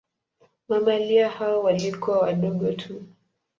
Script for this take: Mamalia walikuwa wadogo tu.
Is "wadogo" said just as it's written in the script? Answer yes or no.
yes